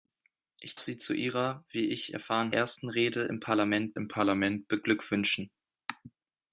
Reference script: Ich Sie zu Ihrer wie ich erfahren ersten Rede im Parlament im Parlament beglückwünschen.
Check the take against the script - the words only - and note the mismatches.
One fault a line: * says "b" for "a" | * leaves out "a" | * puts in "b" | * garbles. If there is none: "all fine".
all fine